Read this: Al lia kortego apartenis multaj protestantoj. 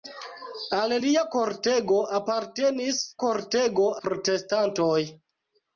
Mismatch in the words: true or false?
true